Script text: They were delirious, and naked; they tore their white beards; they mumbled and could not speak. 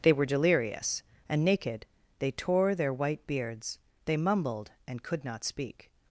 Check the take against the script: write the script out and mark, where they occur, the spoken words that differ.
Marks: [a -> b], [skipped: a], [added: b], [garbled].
They were delirious, and naked; they tore their white beards; they mumbled and could not speak.